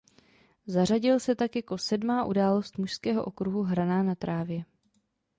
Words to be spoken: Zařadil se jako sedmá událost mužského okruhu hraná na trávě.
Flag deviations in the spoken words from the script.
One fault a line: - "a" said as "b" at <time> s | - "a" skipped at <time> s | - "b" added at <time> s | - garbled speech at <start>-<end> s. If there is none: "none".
- "tak" added at 1.4 s